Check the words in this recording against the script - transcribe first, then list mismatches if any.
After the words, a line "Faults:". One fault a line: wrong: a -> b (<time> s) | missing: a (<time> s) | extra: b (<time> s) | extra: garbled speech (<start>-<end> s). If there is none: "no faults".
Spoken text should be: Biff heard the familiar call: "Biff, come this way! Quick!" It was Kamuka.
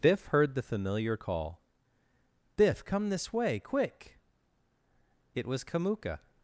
Biff heard the familiar call: "Biff, come this way! Quick!" It was Kamuka.
Faults:
no faults